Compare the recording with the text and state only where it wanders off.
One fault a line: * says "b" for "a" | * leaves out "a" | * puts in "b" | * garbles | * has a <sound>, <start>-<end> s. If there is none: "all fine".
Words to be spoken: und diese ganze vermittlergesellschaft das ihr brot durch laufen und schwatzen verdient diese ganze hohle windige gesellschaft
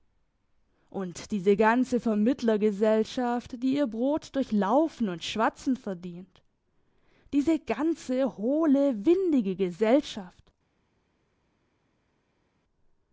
* says "die" for "das"